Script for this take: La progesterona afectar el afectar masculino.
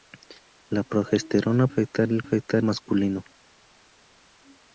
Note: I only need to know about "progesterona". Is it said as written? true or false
true